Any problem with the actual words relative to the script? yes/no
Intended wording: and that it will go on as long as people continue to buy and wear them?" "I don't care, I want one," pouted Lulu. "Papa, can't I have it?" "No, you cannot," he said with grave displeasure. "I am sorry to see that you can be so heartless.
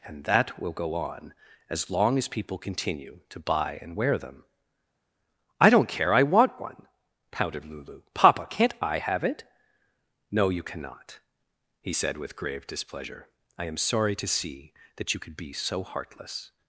yes